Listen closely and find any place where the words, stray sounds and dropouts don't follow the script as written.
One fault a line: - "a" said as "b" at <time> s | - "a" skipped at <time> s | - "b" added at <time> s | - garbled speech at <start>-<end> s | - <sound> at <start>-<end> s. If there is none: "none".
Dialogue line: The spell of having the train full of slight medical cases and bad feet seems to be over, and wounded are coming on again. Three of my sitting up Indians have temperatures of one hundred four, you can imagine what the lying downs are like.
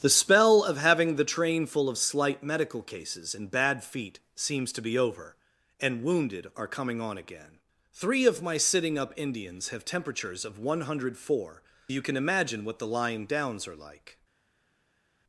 none